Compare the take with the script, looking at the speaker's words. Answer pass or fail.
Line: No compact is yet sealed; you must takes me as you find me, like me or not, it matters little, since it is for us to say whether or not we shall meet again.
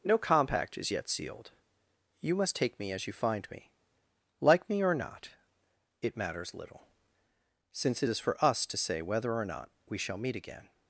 fail